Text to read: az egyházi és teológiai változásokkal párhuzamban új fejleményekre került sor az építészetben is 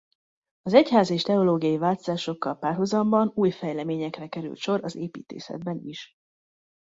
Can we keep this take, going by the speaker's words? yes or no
yes